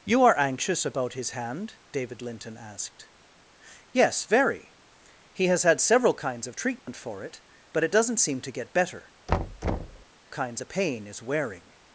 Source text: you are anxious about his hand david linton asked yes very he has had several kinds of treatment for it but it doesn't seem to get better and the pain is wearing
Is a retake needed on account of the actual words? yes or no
yes